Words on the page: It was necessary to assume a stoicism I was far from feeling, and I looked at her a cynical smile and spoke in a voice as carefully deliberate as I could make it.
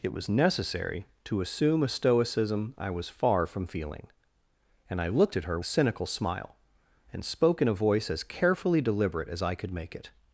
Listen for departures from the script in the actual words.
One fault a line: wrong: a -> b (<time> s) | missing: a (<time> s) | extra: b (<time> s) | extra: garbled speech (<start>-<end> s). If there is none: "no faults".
no faults